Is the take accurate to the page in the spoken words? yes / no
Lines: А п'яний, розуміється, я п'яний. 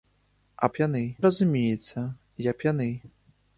yes